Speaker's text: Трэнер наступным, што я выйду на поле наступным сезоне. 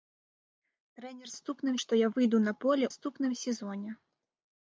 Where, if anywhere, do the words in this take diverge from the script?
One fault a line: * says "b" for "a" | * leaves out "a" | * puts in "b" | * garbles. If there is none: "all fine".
all fine